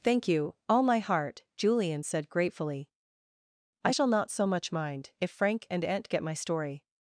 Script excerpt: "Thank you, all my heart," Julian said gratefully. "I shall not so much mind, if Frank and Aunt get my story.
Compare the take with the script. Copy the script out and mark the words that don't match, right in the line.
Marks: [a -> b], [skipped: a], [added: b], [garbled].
"Thank you, all my heart," Julian said gratefully. "I shall not so much mind, if Frank and Aunt get my story.